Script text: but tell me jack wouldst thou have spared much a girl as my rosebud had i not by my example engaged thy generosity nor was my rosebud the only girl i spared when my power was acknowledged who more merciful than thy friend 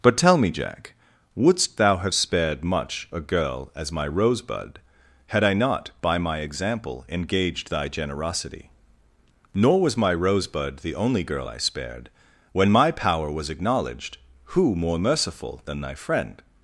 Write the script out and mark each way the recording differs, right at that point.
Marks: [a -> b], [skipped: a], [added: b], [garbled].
but tell me jack wouldst thou have spared much a girl as my rosebud had i not by my example engaged thy generosity nor was my rosebud the only girl i spared when my power was acknowledged who more merciful than thy friend